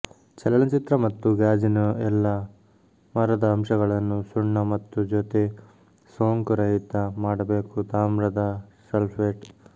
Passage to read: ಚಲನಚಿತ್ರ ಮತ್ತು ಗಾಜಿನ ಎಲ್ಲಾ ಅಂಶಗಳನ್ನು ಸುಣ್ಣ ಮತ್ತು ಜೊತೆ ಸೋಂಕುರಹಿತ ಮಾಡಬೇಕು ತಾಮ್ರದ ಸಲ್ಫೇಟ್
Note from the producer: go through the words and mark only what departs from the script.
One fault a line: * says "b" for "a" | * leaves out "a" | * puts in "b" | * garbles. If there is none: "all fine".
* puts in "ಮರದ"